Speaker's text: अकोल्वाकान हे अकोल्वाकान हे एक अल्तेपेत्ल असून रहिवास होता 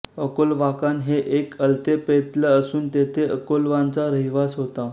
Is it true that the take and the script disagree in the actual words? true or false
true